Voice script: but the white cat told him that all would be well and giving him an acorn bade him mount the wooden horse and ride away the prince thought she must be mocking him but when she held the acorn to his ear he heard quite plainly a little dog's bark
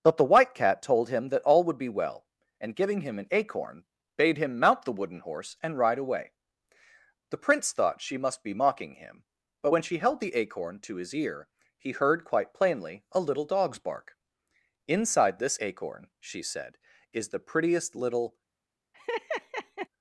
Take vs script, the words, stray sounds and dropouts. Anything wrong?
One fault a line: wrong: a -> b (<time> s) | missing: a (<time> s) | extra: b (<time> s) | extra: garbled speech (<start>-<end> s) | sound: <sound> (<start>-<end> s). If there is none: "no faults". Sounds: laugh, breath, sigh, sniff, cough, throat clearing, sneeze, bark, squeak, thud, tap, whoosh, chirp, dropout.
extra: inside this acorn she said is the prettiest little (14.9 s)
sound: laugh (18.9-19.9 s)